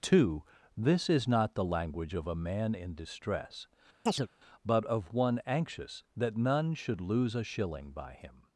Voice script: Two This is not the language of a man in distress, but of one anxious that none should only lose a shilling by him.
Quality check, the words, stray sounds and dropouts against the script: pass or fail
fail